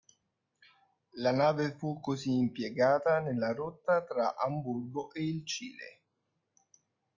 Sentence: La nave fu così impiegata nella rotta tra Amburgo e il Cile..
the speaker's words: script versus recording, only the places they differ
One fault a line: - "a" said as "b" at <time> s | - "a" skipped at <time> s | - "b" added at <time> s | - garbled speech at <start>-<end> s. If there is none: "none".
none